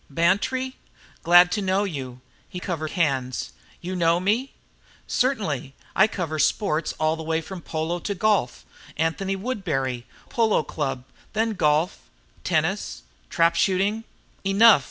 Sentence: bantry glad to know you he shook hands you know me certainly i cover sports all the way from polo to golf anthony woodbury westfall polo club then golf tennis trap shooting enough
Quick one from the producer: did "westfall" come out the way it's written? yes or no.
no